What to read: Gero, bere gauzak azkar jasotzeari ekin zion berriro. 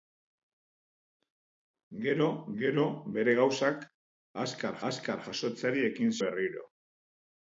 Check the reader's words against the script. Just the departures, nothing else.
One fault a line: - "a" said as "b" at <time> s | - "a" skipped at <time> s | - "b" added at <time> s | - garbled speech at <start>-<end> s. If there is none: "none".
- "gero" added at 2.6 s
- "azkar" added at 4.9 s
- "zion" skipped at 6.1 s